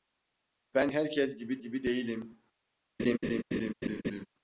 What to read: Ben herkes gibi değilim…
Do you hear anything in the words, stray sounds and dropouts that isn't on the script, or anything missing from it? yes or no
yes